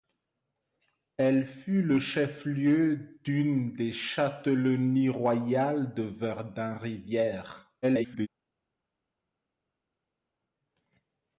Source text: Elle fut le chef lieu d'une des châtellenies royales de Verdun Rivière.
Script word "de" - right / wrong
right